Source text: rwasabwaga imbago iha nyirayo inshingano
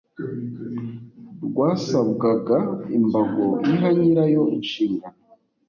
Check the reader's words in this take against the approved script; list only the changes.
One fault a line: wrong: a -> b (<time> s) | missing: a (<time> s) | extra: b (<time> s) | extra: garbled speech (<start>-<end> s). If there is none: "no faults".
no faults